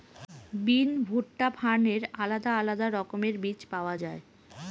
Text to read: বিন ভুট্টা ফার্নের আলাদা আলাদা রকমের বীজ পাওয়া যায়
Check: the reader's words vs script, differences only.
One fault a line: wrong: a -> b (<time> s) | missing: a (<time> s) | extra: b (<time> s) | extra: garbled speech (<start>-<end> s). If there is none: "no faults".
no faults